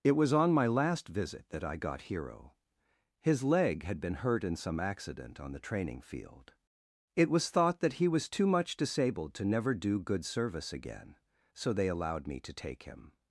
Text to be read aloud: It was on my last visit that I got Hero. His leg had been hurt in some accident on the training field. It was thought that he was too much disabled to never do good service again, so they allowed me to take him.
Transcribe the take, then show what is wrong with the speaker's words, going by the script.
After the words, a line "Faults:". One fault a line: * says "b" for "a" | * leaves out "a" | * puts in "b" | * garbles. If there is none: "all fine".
It was on my last visit that I got Hero. His leg had been hurt in some accident on the training field. It was thought that he was too much disabled to never do good service again, so they allowed me to take him.
Faults:
all fine